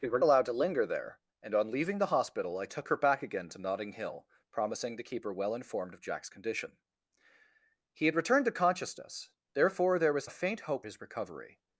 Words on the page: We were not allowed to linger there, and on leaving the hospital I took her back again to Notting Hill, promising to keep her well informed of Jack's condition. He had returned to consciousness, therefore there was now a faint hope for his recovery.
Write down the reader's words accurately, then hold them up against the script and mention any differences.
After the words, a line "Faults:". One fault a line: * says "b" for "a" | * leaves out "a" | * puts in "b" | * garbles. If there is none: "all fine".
We were allowed to linger there, and on leaving the hospital I took her back again to Notting Hill, promising to keep her well informed of Jack's condition. He had returned to consciousness, therefore there was a faint hope his recovery.
Faults:
* leaves out "not"
* leaves out "now"
* leaves out "for"